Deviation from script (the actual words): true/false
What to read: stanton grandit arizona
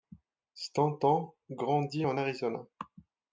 true